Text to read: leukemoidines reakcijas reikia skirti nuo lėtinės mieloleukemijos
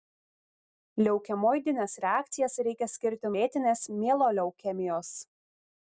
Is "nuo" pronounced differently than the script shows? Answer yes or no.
yes